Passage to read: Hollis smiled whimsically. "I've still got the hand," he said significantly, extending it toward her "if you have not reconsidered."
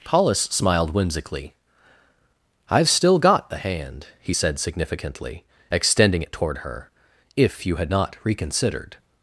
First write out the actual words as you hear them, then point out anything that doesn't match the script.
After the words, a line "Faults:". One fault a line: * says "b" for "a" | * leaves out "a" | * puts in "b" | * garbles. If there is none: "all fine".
Hollis smiled whimsically. "I've still got the hand," he said significantly, extending it toward her "if you had not reconsidered."
Faults:
* says "had" for "have"